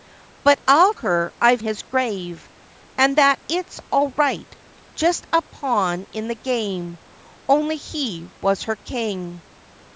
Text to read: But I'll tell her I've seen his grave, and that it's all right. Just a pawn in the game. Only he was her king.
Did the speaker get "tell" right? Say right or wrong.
wrong